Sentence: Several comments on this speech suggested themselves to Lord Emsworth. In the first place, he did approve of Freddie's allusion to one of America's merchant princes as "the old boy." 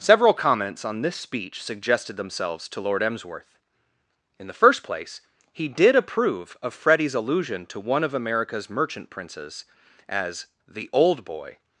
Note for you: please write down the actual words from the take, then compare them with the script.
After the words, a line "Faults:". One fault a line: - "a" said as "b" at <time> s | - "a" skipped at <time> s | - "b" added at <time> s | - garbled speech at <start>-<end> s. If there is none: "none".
Several comments on this speech suggested themselves to Lord Emsworth. In the first place, he did approve of Freddie's allusion to one of America's merchant princes as "the old boy."
Faults:
none